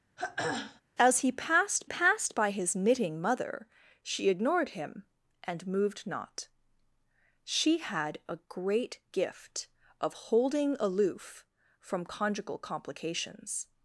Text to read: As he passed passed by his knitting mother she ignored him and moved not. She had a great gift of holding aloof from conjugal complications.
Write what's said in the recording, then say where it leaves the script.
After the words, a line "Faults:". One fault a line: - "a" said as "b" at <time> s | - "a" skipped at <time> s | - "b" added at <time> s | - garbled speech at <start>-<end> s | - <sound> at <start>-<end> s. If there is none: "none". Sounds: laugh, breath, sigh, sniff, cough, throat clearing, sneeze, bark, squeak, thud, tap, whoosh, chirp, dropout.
As he passed passed by his knitting mother she ignored him and moved not. She had a great gift of holding aloof from conjugal complications.
Faults:
- throat clearing at 0.2-0.8 s